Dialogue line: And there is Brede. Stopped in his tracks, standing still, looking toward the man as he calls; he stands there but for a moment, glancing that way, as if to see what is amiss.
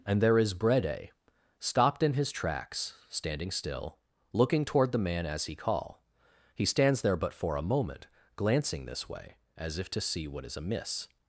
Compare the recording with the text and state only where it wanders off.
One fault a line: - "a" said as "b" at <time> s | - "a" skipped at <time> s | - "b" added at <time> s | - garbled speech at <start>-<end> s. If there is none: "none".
- "calls" said as "call" at 5.6 s
- "that" said as "this" at 8.9 s